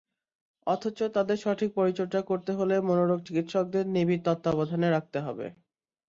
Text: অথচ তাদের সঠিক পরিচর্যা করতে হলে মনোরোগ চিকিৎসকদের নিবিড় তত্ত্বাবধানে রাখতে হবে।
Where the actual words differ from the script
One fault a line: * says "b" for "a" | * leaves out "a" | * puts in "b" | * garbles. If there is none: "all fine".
all fine